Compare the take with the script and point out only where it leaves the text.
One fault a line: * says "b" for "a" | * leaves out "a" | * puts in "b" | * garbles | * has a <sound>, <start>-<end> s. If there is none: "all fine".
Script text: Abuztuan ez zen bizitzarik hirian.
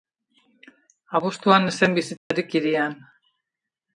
* has a dropout, 2.2-2.3 s